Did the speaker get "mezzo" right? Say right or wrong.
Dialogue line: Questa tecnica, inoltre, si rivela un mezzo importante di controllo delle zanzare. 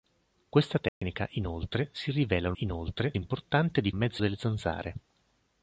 wrong